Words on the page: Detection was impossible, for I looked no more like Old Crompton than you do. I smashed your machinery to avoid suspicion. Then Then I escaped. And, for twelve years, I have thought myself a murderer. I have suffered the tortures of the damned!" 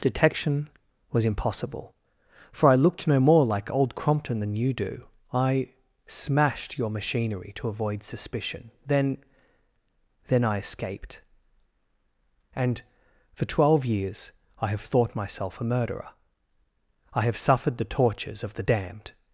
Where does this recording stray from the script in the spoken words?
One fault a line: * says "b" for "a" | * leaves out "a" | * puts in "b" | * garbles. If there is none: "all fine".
all fine